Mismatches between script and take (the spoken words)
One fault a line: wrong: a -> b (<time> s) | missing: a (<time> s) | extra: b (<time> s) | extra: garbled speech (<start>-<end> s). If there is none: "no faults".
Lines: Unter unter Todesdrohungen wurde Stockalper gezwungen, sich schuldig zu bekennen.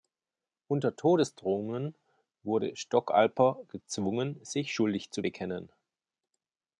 missing: unter (0.9 s)